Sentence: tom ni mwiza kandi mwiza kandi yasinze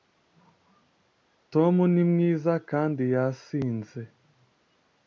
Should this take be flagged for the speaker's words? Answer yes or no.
yes